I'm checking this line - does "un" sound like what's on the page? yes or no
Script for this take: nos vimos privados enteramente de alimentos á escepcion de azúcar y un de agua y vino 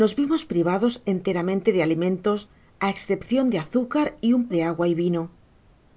yes